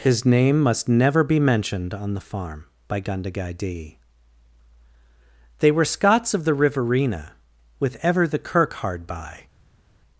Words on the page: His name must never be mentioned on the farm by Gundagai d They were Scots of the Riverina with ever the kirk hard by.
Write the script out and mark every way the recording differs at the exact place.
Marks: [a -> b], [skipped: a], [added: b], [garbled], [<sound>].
His name must never be mentioned on the farm by Gundagai d They were Scots of the Riverina with ever the kirk hard by.